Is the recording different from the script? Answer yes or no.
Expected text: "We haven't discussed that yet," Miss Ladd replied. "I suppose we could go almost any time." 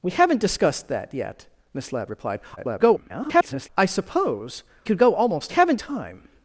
yes